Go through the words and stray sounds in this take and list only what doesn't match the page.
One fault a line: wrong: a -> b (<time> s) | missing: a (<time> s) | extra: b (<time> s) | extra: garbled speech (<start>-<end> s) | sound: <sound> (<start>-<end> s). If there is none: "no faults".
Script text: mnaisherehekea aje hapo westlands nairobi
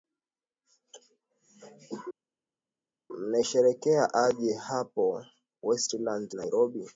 no faults